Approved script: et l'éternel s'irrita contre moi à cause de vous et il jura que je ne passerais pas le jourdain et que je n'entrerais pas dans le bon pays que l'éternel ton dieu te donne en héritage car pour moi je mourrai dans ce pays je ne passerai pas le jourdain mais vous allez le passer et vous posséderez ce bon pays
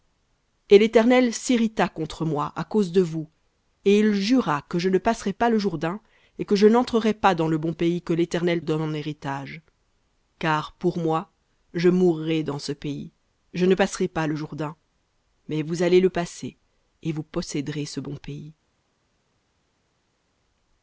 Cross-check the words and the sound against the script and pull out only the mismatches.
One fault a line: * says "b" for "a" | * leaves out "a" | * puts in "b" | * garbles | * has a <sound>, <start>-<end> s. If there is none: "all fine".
* leaves out "ton dieu te"